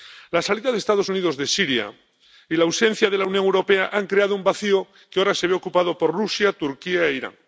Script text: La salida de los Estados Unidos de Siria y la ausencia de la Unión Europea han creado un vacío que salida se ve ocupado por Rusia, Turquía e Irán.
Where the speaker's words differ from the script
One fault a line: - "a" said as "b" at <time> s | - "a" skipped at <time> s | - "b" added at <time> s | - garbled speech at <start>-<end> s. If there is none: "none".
- "salida" said as "ahora" at 5.2 s